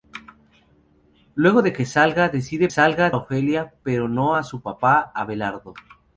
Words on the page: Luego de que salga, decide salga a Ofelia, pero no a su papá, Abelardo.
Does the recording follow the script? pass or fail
pass